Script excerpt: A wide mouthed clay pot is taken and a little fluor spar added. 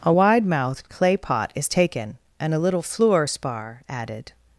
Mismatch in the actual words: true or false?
false